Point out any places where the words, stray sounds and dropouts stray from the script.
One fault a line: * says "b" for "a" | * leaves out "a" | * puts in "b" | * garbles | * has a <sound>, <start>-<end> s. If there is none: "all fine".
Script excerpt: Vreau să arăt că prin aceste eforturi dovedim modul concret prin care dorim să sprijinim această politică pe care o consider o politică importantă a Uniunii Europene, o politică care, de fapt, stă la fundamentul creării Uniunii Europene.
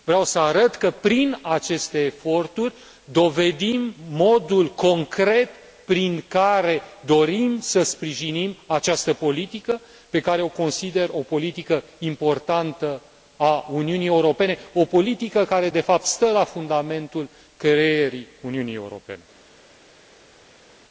all fine